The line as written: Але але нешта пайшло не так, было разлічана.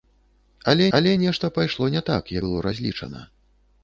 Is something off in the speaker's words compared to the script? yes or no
no